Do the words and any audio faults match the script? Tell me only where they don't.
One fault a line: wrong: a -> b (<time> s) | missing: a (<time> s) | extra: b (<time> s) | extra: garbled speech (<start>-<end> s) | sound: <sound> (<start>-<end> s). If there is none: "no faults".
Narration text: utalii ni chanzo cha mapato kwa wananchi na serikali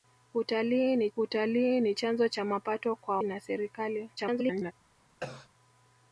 extra: utalii ni (1.2 s)
missing: wananchi (3.2 s)
extra: garbled speech (4.2-4.7 s)
sound: cough (5.2-5.5 s)